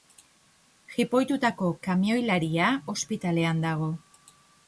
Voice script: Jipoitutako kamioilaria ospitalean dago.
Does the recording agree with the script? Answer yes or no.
yes